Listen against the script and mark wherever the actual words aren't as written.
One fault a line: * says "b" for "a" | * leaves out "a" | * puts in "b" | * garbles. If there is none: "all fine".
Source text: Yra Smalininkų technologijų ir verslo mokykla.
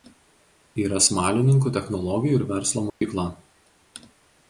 all fine